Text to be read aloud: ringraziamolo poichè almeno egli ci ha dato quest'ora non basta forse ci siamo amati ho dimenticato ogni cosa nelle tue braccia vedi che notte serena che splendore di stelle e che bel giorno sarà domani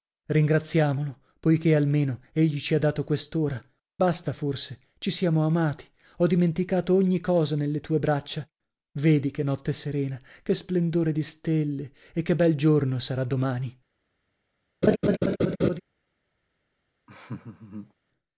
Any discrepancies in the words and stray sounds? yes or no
yes